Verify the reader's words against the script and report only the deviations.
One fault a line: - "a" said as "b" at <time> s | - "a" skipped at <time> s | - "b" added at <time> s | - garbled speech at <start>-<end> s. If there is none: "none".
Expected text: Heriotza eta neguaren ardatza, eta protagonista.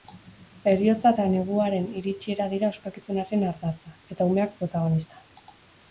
- "iritsiera dira ospakizunaren" added at 2.0 s
- "umeak" added at 4.3 s